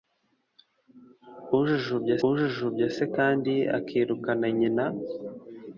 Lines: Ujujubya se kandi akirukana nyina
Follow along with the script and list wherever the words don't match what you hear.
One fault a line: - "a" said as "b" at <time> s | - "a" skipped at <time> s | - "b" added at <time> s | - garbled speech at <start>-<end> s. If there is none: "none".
- "ujujubya" added at 2.3 s